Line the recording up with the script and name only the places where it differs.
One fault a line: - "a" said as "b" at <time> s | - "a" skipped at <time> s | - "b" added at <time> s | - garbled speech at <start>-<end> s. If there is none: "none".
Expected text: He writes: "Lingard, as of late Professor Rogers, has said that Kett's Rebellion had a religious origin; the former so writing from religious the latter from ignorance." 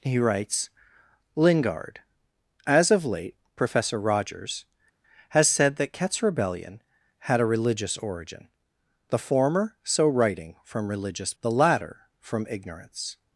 none